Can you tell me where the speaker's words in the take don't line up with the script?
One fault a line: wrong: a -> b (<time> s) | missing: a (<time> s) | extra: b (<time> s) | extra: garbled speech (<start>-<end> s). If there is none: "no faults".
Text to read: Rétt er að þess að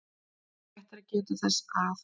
extra: geta (1.1 s)